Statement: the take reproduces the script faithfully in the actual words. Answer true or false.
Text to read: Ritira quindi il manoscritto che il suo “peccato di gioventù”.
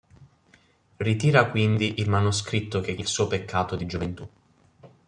true